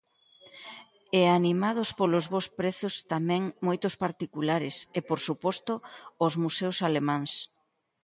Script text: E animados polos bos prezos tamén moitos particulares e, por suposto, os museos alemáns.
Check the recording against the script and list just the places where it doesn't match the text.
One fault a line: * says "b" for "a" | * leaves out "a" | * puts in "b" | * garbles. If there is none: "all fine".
all fine